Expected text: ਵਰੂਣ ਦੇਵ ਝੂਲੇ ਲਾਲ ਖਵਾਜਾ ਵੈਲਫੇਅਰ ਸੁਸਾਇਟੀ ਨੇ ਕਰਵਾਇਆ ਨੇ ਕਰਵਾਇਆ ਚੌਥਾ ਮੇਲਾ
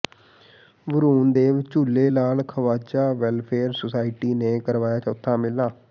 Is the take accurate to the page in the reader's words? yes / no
no